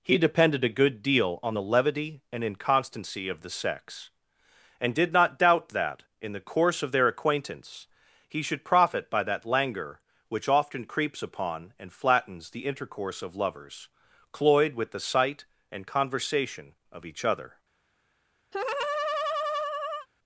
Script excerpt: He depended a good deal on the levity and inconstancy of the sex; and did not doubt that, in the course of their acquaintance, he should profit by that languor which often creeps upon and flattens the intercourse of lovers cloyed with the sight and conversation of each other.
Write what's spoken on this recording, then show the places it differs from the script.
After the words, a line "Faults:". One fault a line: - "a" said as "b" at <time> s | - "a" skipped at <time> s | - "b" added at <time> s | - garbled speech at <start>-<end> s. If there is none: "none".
He depended a good deal on the levity and inconstancy of the sex; and did not doubt that, in the course of their acquaintance, he should profit by that languor which often creeps upon and flattens the intercourse of lovers cloyed with the sight and conversation of each other.
Faults:
none